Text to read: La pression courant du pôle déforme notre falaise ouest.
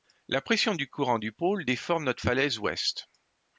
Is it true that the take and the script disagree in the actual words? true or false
true